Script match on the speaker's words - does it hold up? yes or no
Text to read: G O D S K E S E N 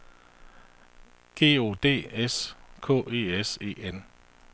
yes